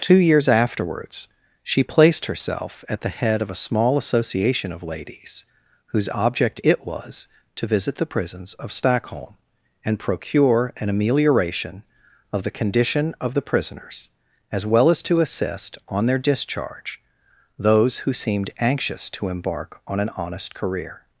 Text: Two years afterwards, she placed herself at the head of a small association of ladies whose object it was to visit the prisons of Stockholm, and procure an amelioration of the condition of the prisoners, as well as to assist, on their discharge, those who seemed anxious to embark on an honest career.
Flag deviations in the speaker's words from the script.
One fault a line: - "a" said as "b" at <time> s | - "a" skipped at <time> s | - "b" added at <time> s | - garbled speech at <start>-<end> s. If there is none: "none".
none